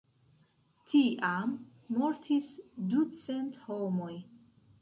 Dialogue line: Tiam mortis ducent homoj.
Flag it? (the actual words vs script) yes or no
no